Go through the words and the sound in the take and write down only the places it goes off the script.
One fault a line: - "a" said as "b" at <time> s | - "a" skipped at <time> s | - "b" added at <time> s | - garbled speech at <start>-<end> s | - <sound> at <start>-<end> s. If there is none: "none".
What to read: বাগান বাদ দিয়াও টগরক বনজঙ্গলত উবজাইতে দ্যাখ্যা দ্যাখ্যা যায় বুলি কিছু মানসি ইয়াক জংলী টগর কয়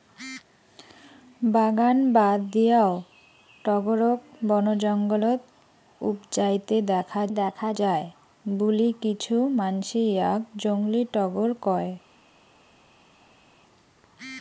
none